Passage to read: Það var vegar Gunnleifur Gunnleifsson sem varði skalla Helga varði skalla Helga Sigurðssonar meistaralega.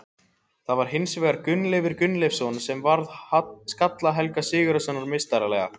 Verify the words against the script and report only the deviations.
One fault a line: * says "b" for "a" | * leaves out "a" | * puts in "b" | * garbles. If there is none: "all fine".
* puts in "hins"
* leaves out "varði skalla Helga"